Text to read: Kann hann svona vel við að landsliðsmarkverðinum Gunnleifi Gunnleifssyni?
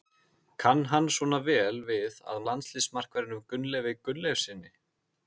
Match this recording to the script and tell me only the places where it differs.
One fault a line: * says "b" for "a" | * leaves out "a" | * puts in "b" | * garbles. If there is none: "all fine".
all fine